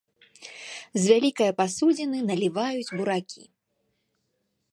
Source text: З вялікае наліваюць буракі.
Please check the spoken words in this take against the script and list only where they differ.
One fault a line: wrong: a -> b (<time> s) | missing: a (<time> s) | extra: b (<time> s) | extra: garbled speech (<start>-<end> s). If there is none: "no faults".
extra: пасудзіны (1.6 s)